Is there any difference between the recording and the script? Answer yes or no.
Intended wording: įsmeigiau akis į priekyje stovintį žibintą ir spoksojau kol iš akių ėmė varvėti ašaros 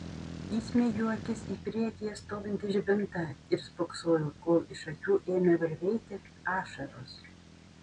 no